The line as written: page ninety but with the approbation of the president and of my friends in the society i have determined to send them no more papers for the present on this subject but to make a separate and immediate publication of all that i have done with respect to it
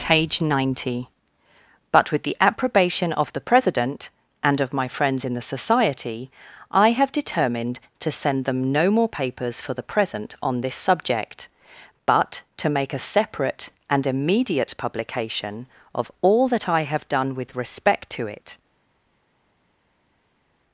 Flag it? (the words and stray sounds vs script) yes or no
no